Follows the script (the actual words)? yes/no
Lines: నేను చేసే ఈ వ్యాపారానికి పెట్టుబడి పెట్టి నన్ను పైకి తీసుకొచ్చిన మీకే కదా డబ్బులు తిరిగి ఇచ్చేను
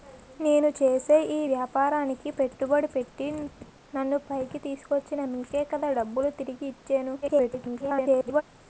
no